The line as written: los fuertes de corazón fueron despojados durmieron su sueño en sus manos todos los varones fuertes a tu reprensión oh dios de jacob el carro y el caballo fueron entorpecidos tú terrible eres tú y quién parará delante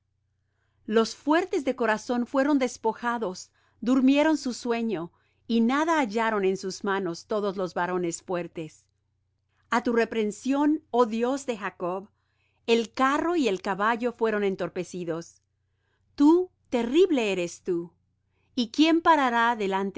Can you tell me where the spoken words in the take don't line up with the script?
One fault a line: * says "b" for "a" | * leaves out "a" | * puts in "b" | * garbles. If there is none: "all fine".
* puts in "y nada hallaron"